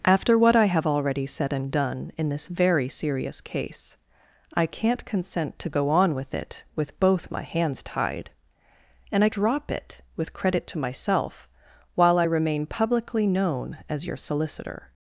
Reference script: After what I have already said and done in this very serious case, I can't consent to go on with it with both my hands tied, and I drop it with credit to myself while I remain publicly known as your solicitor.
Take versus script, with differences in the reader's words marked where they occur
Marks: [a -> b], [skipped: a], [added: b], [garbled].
After what I have already said and done in this very serious case, I can't consent to go on with it with both my hands tied, and I drop it with credit to myself while I remain publicly known as your solicitor.